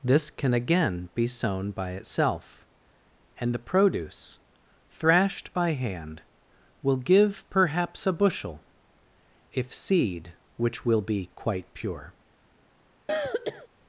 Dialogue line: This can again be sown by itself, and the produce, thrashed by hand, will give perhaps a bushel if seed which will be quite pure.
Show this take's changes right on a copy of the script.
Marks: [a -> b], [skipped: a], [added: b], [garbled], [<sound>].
This can again be sown by itself, and the produce, thrashed by hand, will give perhaps a bushel if seed which will be quite pure. [throat clearing]